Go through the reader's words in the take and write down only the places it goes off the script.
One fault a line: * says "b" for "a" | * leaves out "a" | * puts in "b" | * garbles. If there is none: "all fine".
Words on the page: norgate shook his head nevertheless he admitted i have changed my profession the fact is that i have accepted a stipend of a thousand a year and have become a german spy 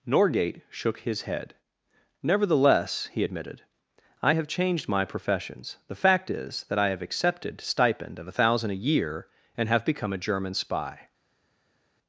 * says "professions" for "profession"
* leaves out "a"